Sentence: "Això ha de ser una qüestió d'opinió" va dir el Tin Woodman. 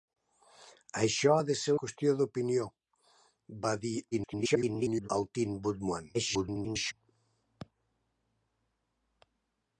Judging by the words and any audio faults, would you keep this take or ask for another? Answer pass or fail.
fail